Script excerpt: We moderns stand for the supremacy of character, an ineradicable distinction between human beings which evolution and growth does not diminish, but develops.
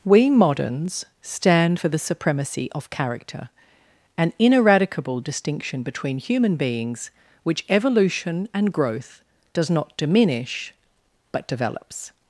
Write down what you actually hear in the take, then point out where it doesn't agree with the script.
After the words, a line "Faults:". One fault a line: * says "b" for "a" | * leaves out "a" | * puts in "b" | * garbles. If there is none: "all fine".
We moderns stand for the supremacy of character, an ineradicable distinction between human beings which evolution and growth does not diminish, but develops.
Faults:
all fine